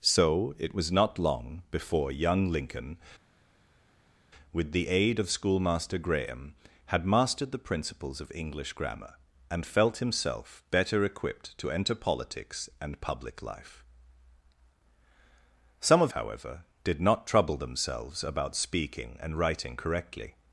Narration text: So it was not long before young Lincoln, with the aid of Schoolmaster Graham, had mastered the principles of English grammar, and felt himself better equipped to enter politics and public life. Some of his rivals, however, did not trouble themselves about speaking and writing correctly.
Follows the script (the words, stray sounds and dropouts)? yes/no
no